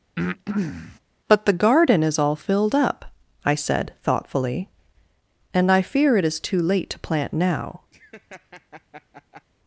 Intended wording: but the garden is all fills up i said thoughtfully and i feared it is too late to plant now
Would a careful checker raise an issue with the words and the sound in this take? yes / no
yes